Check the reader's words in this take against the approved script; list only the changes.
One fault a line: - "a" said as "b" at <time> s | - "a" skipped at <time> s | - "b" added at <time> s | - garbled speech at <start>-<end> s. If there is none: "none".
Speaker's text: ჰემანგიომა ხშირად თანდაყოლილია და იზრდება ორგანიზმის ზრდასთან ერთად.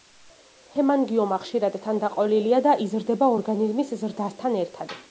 none